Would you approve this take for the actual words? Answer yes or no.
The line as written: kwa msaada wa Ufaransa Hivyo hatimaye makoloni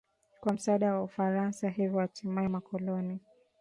yes